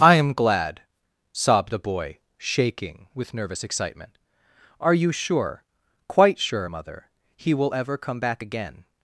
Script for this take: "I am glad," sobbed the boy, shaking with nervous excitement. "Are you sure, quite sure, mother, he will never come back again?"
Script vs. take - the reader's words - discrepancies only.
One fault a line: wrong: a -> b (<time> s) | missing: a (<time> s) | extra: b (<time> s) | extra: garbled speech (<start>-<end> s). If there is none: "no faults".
wrong: never -> ever (7.7 s)